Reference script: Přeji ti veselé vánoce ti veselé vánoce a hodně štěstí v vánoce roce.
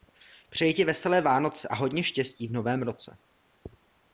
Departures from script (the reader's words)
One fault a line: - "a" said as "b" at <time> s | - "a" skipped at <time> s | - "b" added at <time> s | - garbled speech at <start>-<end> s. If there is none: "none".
- "ti veselé vánoce" skipped at 1.7 s
- "vánoce" said as "novém" at 2.5 s